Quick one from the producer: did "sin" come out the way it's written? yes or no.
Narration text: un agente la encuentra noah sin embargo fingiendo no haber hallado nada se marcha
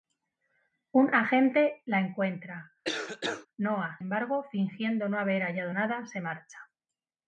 no